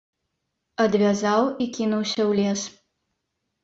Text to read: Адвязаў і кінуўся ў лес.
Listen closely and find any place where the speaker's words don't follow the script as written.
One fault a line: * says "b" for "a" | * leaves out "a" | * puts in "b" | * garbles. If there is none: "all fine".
all fine